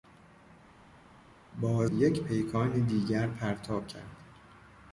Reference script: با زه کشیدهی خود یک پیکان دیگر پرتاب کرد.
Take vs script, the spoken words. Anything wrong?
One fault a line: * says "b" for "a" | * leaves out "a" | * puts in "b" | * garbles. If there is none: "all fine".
* leaves out "زه کشیدهی خود"